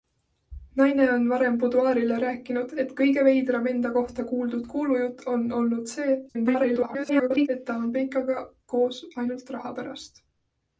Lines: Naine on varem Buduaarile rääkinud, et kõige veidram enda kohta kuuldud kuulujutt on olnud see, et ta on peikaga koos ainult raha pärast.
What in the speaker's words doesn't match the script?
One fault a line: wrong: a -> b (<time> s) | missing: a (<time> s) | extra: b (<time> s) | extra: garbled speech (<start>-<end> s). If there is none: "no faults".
extra: garbled speech (6.3-7.5 s)